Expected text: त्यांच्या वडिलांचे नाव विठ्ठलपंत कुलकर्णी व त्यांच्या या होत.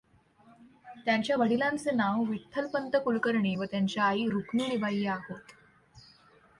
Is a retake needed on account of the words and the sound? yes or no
yes